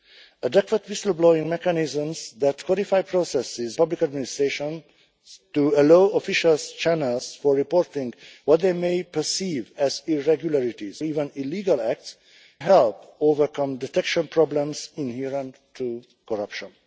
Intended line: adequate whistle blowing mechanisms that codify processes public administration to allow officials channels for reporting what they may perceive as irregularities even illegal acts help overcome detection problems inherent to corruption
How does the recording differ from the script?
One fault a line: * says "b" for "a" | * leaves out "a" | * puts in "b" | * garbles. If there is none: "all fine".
all fine